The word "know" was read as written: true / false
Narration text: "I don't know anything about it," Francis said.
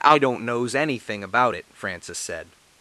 false